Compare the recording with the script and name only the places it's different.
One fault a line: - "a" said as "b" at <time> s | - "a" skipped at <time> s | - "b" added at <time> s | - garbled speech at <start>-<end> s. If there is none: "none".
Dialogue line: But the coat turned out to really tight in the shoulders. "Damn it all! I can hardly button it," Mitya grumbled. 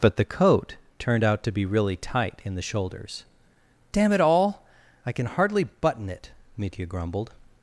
- "be" added at 1.5 s